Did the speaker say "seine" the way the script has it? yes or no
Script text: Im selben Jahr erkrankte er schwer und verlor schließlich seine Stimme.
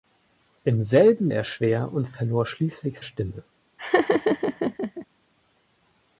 no